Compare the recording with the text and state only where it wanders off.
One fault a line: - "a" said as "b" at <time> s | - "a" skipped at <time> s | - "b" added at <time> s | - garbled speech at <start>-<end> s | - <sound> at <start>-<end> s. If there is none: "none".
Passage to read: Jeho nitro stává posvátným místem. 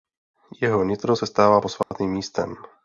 - "se" added at 1.1 s
- dropout at 1.8-1.9 s